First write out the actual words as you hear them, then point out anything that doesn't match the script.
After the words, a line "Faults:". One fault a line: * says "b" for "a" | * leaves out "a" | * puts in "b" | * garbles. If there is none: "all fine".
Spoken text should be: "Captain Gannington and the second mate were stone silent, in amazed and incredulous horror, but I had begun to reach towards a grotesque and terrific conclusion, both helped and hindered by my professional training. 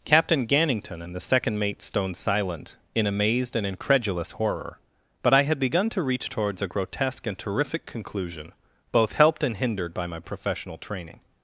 "Captain Gannington and the second mate stone silent, in amazed and incredulous horror, but I had begun to reach towards a grotesque and terrific conclusion, both helped and hindered by my professional training.
Faults:
* leaves out "were"